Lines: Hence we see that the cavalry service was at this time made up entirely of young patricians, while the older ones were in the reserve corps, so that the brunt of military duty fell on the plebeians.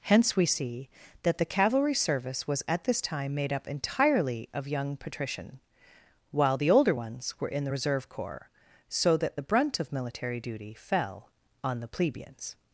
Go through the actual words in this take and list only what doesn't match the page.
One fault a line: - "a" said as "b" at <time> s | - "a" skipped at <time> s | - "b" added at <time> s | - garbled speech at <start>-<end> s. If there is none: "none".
- "patricians" said as "patrician" at 5.0 s